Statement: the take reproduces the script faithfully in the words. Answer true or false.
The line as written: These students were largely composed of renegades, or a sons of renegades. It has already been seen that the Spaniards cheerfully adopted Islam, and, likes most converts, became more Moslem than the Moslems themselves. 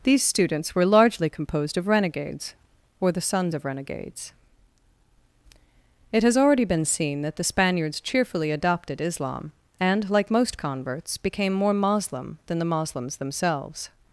false